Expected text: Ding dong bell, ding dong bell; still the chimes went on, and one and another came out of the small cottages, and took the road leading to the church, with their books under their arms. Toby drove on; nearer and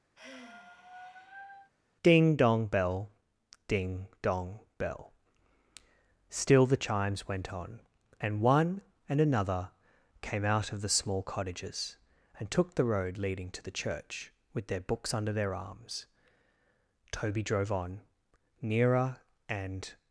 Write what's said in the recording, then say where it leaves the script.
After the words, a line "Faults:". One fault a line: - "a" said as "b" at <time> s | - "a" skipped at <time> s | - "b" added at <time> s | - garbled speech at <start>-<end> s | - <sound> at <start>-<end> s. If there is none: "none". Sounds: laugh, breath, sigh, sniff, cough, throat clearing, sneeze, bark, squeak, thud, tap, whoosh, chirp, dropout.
Ding dong bell, ding dong bell; still the chimes went on, and one and another came out of the small cottages, and took the road leading to the church, with their books under their arms. Toby drove on; nearer and
Faults:
- sigh at 0.2-1.7 s